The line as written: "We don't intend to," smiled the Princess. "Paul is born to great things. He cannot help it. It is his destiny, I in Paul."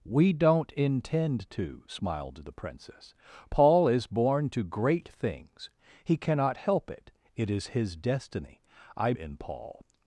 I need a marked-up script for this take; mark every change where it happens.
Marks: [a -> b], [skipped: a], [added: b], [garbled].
"We don't intend to," smiled the Princess. "Paul is born to great things. He cannot help it. It is his destiny, I in Paul."